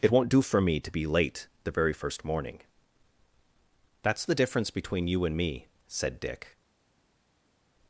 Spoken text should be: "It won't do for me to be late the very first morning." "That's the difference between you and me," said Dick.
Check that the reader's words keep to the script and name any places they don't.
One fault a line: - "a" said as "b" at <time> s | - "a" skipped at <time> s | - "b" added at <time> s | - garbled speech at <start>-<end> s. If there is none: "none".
none